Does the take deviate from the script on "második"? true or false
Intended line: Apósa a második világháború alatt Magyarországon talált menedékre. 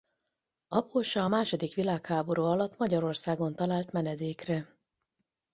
false